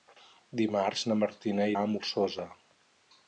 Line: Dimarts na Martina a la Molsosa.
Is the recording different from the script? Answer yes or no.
no